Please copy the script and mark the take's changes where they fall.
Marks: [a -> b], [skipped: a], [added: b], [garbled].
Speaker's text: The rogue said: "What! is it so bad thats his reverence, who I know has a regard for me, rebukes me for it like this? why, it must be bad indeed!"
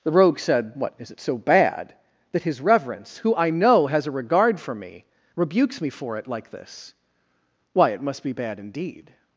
The rogue said: "What! is it so bad [thats -> that] his reverence, who I know has a regard for me, rebukes me for it like this? why, it must be bad indeed!"